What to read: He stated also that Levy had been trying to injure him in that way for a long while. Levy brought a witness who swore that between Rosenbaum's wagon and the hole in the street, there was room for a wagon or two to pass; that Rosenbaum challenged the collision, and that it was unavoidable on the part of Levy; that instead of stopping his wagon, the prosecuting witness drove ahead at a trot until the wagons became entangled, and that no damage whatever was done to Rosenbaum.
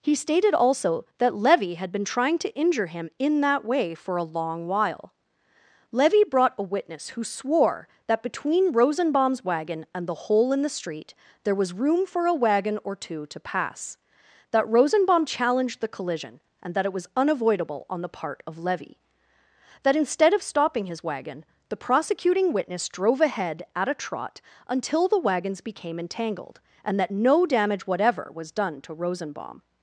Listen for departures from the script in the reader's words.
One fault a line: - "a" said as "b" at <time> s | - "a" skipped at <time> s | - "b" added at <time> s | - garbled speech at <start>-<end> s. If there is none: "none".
none